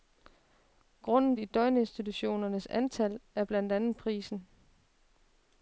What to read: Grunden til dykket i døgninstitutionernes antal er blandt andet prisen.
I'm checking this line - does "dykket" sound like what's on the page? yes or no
no